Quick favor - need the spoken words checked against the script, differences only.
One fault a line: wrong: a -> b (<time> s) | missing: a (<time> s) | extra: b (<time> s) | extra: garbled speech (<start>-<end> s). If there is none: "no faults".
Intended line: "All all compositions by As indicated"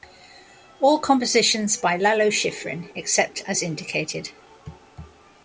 missing: all (1.0 s)
extra: Lalo Schifrin except (1.9 s)